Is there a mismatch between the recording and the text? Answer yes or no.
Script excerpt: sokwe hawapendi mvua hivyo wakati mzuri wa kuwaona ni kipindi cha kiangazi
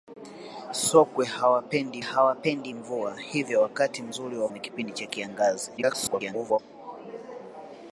yes